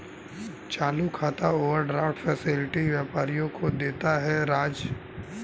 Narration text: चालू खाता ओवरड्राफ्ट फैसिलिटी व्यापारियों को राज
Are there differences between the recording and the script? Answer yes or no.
yes